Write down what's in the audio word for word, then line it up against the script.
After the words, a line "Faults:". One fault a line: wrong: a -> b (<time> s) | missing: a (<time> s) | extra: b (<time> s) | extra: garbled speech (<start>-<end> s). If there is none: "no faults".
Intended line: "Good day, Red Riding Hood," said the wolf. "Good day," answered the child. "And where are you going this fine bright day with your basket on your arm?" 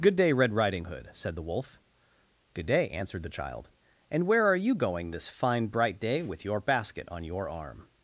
"Good day, Red Riding Hood," said the wolf. "Good day," answered the child. "And where are you going this fine bright day with your basket on your arm?"
Faults:
no faults